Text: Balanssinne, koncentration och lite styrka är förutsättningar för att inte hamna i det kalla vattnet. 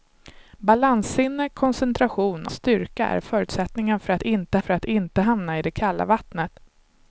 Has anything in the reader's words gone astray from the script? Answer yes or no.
yes